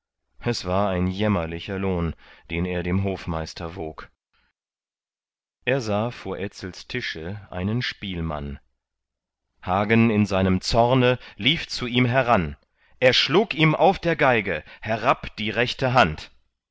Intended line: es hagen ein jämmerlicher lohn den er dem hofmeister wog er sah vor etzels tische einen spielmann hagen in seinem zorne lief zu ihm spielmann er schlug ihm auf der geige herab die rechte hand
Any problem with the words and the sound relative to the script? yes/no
yes